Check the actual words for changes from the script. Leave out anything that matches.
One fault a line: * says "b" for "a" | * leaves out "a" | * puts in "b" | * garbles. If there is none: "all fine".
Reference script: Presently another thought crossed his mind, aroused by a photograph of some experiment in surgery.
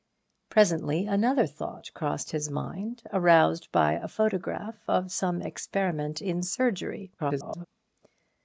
* garbles